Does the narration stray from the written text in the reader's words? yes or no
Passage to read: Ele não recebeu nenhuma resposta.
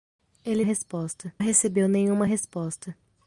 yes